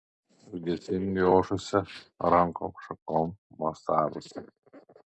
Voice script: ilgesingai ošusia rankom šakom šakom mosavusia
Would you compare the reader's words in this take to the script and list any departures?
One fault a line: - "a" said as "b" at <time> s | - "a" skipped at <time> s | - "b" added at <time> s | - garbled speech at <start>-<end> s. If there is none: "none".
- "šakom" skipped at 3.3 s